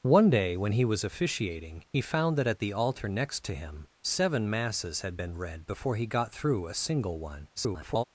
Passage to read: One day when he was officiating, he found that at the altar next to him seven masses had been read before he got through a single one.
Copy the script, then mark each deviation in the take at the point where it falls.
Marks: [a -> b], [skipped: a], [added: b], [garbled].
One day when he was officiating, he found that at the altar next to him seven masses had been read before he got through a single one. [garbled]